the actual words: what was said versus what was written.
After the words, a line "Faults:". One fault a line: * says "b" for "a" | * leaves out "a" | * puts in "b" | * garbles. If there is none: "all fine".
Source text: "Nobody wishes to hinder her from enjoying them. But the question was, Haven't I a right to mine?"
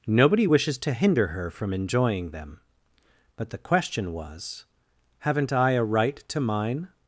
"Nobody wishes to hinder her from enjoying them. But the question was, Haven't I a right to mine?"
Faults:
all fine